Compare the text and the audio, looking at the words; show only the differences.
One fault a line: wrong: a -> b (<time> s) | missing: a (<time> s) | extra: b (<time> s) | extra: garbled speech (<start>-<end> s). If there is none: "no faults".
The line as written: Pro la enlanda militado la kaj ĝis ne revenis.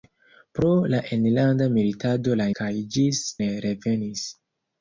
no faults